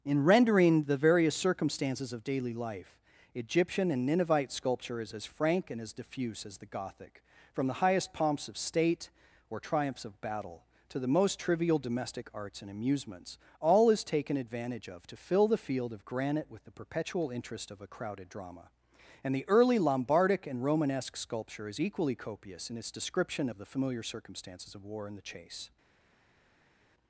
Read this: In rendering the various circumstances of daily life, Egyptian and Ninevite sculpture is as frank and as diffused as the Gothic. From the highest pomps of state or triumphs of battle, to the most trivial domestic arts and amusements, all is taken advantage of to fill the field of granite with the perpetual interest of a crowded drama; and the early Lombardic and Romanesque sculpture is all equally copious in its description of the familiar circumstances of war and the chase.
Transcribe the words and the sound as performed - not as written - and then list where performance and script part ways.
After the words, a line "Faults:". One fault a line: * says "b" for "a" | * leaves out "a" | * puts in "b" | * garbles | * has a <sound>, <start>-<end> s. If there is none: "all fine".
In rendering the various circumstances of daily life, Egyptian and Ninevite sculpture is as frank and as diffuse as the Gothic. From the highest pomps of state or triumphs of battle, to the most trivial domestic arts and amusements, all is taken advantage of to fill the field of granite with the perpetual interest of a crowded drama; and the early Lombardic and Romanesque sculpture is equally copious in its description of the familiar circumstances of war and the chase.
Faults:
* says "diffuse" for "diffused"
* leaves out "all"